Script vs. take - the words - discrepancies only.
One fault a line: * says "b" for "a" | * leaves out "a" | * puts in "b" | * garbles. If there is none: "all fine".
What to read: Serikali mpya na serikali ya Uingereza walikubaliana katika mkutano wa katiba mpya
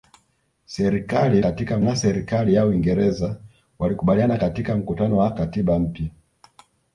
* says "katika" for "mpya"